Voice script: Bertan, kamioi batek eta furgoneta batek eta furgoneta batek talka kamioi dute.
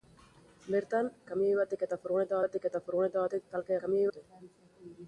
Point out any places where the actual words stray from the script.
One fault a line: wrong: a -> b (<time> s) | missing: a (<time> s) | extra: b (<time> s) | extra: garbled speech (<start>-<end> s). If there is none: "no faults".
no faults